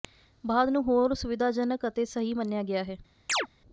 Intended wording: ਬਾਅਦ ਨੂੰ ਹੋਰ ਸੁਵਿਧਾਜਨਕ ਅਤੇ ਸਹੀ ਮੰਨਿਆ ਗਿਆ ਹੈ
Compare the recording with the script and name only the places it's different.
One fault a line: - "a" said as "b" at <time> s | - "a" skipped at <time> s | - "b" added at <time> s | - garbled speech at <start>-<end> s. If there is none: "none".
none